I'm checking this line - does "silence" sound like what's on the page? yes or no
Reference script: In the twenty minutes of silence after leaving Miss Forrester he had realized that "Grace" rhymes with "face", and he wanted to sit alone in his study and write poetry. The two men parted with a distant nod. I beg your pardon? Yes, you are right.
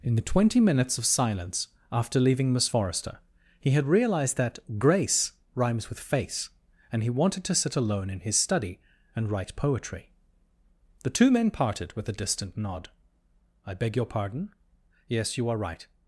yes